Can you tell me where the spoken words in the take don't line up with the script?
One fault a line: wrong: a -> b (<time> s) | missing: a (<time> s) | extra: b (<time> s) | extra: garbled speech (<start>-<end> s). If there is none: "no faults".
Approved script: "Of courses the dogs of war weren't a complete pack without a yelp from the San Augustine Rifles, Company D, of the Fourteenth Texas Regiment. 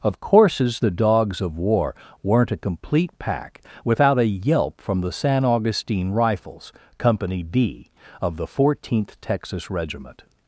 no faults